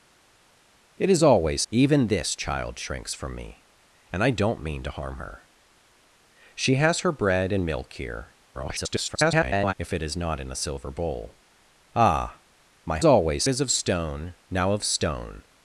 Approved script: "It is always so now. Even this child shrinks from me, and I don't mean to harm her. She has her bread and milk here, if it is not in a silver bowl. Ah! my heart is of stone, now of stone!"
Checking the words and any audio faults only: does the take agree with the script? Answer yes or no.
no